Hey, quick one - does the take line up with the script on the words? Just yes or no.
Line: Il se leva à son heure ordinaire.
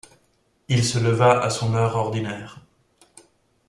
yes